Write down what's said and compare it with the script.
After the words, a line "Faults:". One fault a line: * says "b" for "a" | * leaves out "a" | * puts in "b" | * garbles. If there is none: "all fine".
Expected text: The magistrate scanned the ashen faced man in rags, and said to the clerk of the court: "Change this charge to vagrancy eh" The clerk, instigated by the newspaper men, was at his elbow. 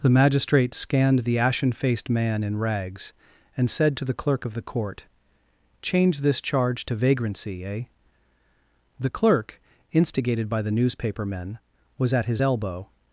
The magistrate scanned the ashen faced man in rags, and said to the clerk of the court: "Change this charge to vagrancy eh" The clerk, instigated by the newspaper men, was at his elbow.
Faults:
all fine